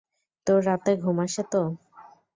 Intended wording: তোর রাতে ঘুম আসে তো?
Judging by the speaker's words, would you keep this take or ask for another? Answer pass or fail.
pass